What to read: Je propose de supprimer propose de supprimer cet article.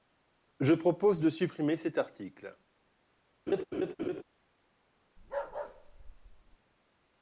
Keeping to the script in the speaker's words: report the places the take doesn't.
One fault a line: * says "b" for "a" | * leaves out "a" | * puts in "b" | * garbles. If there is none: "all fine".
* leaves out "propose de supprimer"